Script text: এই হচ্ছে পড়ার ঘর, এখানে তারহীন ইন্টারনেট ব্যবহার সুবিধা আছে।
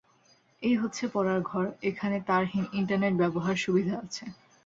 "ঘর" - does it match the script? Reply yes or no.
yes